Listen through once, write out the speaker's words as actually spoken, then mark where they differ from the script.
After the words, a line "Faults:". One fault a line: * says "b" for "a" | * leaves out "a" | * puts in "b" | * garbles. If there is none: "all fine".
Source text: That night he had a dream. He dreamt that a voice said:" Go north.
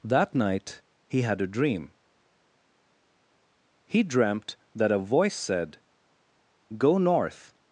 That night he had a dream. He dreamt that a voice said:" Go north.
Faults:
all fine